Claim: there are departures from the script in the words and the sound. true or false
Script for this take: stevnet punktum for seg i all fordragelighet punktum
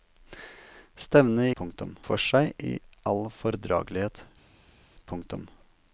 false